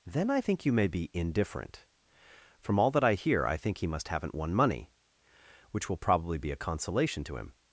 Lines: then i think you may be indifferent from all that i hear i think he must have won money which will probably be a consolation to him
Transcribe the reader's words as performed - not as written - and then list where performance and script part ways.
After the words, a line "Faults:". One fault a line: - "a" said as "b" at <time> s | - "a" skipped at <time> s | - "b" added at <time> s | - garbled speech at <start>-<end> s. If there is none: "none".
then i think you may be indifferent from all that i hear i think he must haven't won money which will probably be a consolation to him
Faults:
- "have" said as "haven't" at 4.1 s